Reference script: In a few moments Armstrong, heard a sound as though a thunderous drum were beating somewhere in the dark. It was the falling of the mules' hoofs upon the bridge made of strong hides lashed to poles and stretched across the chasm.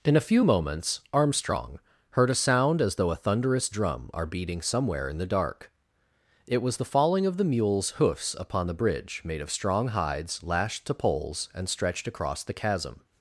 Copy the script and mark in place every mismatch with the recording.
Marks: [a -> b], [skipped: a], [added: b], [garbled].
In a few moments Armstrong, heard a sound as though a thunderous drum [were -> are] beating somewhere in the dark. It was the falling of the mules' hoofs upon the bridge made of strong hides lashed to poles and stretched across the chasm.